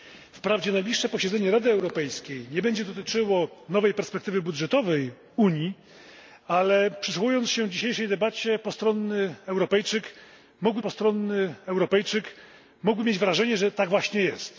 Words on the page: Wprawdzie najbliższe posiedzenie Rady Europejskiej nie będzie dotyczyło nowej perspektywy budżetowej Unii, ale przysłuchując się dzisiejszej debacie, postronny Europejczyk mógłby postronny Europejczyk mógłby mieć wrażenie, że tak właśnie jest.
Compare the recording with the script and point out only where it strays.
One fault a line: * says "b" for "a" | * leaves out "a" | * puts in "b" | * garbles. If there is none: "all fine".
all fine